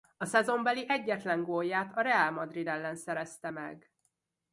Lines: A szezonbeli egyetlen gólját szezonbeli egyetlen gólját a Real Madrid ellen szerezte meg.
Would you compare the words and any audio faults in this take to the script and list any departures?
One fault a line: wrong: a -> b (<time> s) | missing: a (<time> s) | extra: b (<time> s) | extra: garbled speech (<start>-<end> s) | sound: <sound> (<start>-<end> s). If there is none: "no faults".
missing: szezonbeli egyetlen gólját (2.0 s)